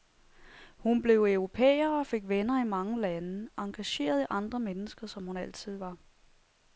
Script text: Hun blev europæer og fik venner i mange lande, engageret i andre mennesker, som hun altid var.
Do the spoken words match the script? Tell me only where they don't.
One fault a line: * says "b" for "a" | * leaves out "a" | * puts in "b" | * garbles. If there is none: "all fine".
all fine